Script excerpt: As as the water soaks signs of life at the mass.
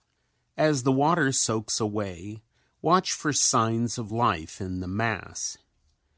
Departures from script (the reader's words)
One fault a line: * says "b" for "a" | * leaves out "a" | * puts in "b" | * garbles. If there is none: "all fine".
* leaves out "as"
* puts in "away watch for"
* says "in" for "at"